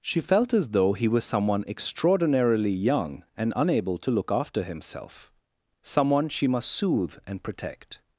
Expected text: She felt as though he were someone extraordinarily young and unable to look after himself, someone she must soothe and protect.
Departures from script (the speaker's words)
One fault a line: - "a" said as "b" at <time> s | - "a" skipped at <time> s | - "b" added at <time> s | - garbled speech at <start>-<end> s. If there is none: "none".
- "were" said as "was" at 1.1 s